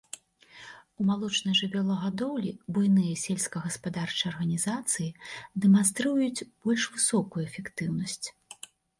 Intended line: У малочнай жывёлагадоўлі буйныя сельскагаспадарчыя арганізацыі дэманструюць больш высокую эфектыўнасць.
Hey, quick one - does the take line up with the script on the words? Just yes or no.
yes